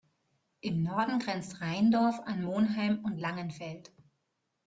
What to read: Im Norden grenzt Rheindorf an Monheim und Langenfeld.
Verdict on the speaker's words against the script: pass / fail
pass